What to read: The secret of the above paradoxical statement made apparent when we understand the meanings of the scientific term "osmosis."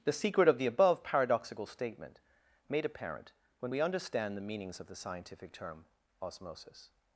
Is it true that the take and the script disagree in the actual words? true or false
false